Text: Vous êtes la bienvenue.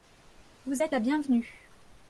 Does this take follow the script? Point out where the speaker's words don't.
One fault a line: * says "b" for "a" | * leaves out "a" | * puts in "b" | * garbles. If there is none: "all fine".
all fine